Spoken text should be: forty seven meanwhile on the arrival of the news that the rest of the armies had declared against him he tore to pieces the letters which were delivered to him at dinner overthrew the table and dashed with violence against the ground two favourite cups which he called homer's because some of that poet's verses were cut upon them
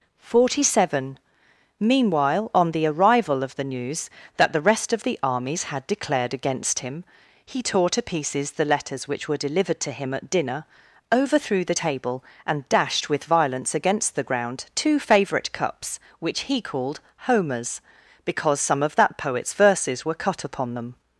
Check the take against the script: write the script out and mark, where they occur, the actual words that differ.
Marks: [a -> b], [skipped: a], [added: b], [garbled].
forty seven meanwhile on the arrival of the news that the rest of the armies had declared against him he tore to pieces the letters which were delivered to him at dinner overthrew the table and dashed with violence against the ground two favourite cups which he called homer's because some of that poet's verses were cut upon them